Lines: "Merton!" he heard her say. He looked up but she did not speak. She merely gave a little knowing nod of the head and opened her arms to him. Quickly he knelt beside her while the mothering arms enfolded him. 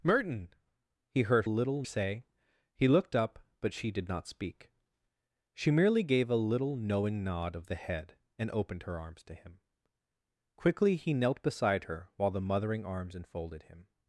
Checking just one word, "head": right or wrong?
right